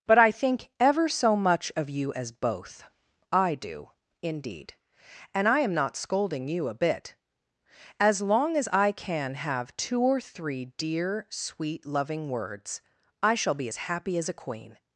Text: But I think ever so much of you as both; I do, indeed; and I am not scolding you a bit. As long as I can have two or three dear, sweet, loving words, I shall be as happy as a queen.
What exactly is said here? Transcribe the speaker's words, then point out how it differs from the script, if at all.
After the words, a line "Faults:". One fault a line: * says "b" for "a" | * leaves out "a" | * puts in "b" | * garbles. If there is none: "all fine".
But I think ever so much of you as both; I do, indeed; and I am not scolding you a bit. As long as I can have two or three dear, sweet, loving words, I shall be as happy as a queen.
Faults:
all fine